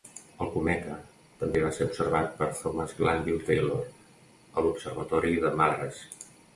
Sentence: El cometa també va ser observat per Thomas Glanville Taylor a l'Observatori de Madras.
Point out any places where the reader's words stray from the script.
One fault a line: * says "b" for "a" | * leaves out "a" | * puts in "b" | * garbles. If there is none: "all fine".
all fine